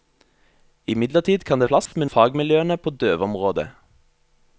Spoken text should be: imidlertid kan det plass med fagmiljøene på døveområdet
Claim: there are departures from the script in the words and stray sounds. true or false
true